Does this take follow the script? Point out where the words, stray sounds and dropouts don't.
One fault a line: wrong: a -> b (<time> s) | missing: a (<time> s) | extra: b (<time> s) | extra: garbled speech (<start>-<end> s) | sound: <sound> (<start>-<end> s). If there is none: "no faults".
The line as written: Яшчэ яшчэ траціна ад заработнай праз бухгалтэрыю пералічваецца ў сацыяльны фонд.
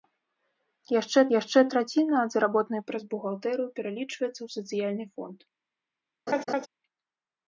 sound: laugh (6.3-6.7 s)